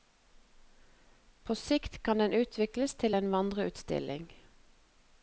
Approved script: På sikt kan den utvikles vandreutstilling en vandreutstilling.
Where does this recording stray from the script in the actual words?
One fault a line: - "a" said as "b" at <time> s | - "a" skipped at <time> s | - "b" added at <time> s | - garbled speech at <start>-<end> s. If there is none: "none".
- "vandreutstilling" said as "til" at 3.0 s